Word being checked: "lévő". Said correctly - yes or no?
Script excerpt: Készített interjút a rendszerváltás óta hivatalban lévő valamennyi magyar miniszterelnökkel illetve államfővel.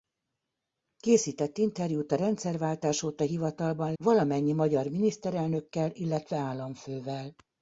no